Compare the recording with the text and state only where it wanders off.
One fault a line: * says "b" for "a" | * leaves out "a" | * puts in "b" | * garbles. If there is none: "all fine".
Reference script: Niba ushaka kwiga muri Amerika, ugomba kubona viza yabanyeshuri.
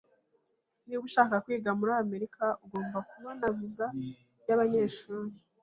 all fine